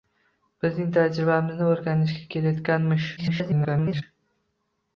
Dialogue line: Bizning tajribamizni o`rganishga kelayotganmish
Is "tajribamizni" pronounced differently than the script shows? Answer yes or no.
no